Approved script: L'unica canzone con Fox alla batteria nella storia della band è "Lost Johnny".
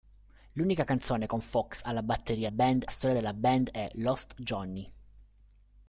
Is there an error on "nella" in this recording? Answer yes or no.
yes